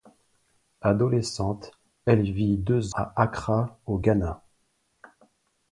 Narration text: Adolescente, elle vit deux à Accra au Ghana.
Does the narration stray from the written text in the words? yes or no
no